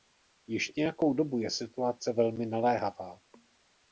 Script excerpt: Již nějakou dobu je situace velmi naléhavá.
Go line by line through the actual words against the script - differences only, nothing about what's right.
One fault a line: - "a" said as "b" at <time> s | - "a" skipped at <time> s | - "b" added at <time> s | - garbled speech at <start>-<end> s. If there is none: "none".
none